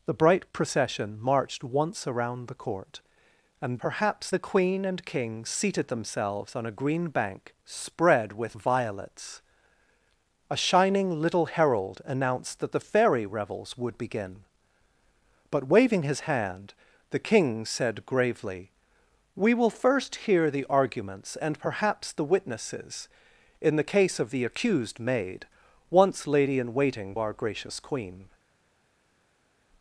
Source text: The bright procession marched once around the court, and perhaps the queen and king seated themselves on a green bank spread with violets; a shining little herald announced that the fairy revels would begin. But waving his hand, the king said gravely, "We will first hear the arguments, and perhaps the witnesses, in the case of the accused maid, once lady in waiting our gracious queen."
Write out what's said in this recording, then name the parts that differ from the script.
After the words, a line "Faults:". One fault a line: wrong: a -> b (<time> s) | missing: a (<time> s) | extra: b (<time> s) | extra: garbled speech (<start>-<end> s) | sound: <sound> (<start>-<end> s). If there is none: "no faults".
The bright procession marched once around the court, and perhaps the queen and king seated themselves on a green bank spread with violets; a shining little herald announced that the fairy revels would begin. But waving his hand, the king said gravely, "We will first hear the arguments, and perhaps the witnesses, in the case of the accused maid, once lady in waiting our gracious queen."
Faults:
no faults